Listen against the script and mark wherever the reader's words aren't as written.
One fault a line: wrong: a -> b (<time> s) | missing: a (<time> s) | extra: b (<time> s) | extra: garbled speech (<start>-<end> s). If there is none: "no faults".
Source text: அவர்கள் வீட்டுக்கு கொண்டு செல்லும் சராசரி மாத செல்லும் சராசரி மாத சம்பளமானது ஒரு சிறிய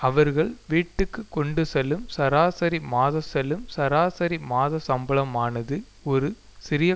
no faults